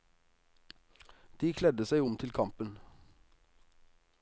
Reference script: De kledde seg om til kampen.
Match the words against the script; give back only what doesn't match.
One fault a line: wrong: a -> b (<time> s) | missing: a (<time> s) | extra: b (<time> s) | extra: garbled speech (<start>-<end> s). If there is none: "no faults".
no faults